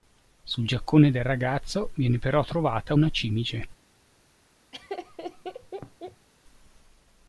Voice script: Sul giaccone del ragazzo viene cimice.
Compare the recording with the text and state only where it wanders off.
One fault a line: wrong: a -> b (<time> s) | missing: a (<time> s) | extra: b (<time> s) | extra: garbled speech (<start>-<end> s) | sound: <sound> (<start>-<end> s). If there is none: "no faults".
extra: però trovata una (2.2 s)
sound: laugh (4.7-6.3 s)